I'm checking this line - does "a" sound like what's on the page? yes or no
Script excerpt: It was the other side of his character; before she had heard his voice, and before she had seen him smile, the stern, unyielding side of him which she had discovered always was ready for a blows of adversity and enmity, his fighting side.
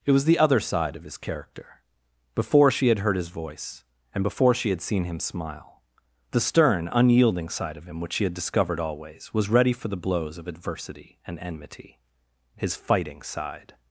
no